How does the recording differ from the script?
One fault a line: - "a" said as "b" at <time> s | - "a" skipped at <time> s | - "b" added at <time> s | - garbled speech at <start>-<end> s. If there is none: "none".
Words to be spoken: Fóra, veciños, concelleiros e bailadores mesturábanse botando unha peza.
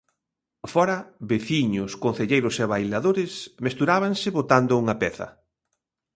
none